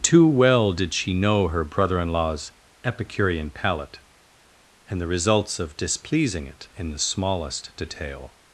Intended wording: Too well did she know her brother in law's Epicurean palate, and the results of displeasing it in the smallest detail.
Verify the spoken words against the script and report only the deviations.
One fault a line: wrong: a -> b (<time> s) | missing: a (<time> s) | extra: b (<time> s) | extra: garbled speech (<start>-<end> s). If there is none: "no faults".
no faults